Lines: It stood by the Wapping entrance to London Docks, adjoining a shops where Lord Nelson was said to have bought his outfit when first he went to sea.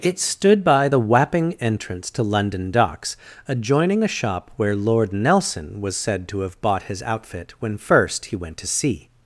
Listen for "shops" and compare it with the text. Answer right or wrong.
wrong